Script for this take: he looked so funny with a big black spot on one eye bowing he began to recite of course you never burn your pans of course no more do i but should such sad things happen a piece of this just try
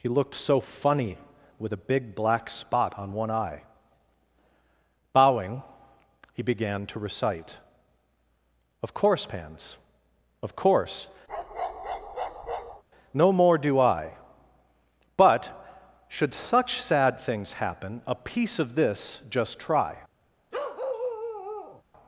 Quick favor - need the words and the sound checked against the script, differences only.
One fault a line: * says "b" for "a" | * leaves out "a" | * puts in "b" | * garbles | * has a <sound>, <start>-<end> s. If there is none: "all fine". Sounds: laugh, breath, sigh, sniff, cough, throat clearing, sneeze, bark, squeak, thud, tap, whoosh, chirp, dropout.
* leaves out "you never burn your"
* has a bark, 11.3-12.8 s
* has a bark, 20.5-21.8 s